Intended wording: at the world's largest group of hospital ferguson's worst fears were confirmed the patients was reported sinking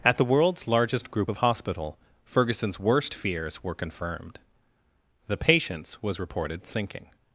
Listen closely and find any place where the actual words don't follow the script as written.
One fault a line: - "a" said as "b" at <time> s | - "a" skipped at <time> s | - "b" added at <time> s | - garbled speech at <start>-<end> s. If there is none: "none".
none